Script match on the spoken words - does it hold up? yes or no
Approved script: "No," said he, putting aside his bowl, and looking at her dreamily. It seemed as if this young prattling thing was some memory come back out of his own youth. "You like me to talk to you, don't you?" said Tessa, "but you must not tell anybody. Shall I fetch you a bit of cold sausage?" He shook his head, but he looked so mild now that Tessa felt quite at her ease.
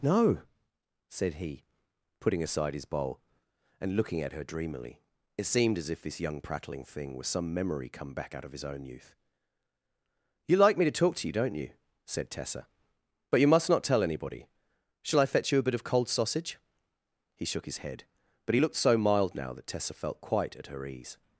yes